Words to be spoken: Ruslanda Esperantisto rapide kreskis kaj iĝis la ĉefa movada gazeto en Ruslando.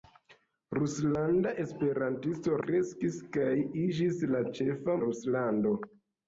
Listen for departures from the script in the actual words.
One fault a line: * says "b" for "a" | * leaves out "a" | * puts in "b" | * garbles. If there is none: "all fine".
* leaves out "rapide"
* leaves out "movada gazeto en"